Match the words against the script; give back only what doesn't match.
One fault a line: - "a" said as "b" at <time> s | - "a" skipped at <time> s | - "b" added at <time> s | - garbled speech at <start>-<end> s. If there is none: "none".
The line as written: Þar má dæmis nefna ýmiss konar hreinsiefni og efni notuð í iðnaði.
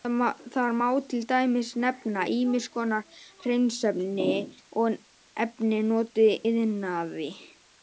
- "til" added at 1.1 s